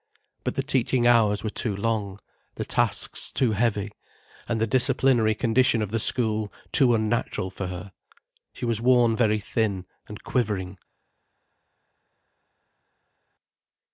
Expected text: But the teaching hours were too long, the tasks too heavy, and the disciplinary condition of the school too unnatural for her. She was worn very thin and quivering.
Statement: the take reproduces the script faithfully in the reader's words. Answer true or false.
true